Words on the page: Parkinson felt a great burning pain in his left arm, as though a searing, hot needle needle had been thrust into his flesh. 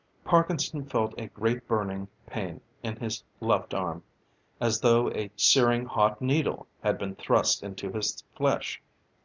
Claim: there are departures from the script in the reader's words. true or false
true